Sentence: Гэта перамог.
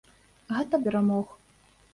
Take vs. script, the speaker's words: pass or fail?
pass